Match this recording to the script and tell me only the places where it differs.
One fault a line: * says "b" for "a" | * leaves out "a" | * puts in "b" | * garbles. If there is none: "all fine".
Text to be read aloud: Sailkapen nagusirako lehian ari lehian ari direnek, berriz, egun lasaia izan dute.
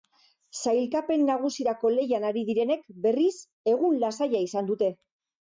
* leaves out "lehian ari"